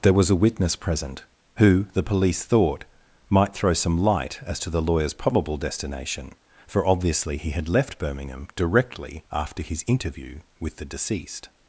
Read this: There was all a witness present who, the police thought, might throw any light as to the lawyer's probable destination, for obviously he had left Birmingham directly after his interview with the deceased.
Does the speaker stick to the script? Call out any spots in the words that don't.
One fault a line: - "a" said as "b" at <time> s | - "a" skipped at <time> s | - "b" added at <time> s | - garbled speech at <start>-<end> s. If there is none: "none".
- "all" skipped at 0.3 s
- "any" said as "some" at 3.7 s